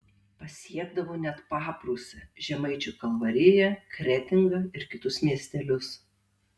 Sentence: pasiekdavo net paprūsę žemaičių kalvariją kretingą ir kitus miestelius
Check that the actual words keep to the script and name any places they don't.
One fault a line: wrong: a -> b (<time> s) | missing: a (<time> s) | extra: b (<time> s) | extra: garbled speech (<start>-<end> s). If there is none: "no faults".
no faults